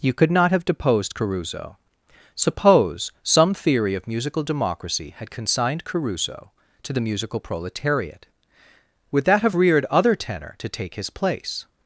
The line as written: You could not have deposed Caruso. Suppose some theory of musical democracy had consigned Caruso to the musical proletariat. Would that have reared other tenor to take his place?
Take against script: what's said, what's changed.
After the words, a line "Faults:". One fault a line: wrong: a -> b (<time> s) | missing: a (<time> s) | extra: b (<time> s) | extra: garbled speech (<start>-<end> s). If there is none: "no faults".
You could not have deposed Caruso. Suppose some theory of musical democracy had consigned Caruso to the musical proletariat. Would that have reared other tenor to take his place?
Faults:
no faults